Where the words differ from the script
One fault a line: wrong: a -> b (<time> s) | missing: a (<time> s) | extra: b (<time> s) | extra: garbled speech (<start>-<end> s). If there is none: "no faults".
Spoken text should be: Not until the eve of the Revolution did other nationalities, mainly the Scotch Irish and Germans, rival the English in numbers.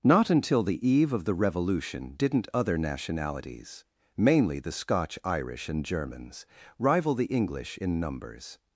wrong: did -> didn't (2.2 s)